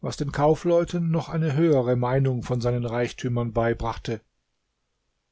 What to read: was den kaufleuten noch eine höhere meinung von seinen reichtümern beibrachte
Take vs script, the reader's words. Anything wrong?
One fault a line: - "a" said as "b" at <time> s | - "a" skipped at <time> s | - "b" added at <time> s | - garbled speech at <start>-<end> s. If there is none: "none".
none